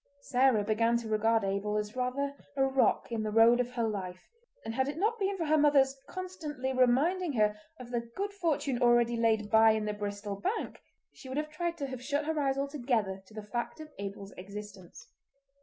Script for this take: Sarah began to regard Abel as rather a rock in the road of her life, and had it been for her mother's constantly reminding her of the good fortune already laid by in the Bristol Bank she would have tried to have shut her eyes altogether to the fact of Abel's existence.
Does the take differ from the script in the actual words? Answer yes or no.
yes